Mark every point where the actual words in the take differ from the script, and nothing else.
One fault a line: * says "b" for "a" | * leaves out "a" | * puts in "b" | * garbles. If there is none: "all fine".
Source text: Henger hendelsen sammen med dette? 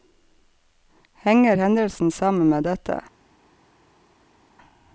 all fine